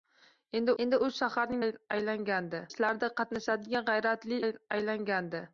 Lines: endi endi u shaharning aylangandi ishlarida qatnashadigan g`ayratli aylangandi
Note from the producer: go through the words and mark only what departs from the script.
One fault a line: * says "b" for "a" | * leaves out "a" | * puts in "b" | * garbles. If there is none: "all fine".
all fine